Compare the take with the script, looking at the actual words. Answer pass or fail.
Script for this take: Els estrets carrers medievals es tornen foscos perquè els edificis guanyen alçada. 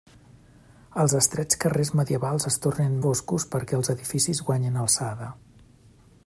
pass